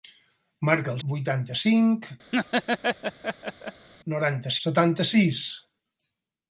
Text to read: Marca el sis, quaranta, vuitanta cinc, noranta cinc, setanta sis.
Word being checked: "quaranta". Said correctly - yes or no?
no